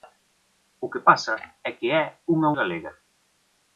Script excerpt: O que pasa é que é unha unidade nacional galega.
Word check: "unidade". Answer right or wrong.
wrong